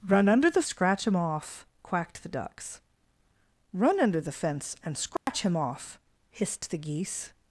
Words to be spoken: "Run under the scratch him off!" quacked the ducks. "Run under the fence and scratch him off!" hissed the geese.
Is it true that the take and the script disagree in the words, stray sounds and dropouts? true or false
true